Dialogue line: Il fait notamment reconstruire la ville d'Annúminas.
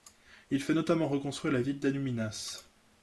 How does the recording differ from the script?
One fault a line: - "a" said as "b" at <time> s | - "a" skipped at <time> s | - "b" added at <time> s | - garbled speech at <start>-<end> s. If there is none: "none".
none